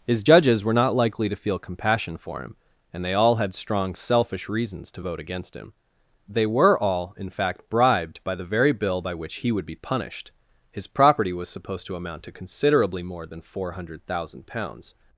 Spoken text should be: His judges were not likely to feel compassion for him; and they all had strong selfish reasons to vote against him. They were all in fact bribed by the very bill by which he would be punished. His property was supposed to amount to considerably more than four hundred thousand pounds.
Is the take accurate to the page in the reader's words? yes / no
yes